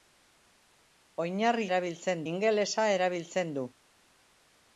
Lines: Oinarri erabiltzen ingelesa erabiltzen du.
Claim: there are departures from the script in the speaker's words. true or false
false